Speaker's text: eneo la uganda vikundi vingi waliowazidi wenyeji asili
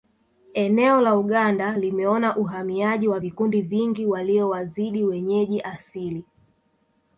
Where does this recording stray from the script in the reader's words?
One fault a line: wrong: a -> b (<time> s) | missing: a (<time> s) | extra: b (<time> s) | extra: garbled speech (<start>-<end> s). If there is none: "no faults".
extra: limeona uhamiaji wa (1.8 s)